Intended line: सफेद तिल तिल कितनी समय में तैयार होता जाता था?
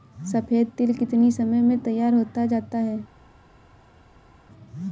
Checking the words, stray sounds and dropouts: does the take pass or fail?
fail